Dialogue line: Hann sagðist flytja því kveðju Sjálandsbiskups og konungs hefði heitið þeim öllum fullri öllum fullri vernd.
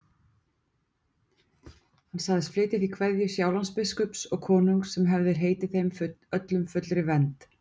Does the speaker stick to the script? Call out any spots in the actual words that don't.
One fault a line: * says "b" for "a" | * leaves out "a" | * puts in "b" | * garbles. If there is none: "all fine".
* puts in "sem"
* leaves out "öllum fullri"